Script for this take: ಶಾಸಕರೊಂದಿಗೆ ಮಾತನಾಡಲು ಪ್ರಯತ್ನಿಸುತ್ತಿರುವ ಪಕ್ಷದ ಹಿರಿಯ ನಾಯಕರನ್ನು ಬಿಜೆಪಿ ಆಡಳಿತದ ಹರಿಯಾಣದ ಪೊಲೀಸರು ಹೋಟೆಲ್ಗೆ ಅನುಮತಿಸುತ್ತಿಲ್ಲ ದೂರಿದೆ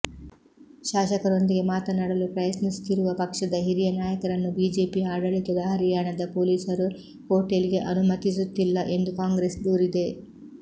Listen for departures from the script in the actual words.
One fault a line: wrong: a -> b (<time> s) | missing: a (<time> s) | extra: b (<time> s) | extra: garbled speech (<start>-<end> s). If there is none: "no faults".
extra: ಎಂದು ಕಾಂಗ್ರೆಸ್ (9.0 s)